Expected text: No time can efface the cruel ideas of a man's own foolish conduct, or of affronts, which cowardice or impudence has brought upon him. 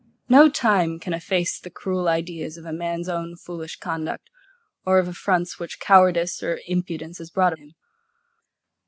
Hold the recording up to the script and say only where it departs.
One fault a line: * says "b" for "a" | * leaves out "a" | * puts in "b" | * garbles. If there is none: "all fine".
* leaves out "upon"